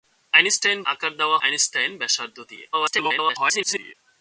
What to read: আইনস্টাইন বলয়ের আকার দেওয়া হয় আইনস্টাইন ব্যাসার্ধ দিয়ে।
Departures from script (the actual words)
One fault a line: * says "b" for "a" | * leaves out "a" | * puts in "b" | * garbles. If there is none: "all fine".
* leaves out "বলয়ের"
* leaves out "হয়"
* garbles